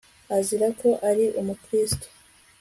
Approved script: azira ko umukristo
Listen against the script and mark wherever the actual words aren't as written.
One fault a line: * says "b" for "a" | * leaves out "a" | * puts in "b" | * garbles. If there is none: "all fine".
* puts in "ari"